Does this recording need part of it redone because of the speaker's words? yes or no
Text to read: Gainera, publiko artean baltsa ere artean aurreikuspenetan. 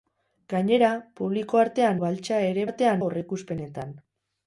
no